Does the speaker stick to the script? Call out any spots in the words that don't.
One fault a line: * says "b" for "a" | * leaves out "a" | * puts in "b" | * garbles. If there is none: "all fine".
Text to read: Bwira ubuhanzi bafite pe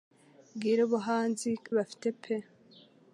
all fine